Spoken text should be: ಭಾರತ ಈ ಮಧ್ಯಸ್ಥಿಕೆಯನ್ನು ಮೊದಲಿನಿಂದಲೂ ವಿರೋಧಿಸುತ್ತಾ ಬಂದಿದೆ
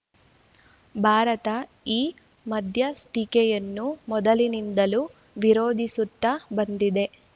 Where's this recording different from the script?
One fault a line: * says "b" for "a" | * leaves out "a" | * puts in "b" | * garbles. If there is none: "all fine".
all fine